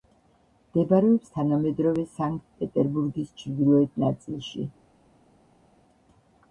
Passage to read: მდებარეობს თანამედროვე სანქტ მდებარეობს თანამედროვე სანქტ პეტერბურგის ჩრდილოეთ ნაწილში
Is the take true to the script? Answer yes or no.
no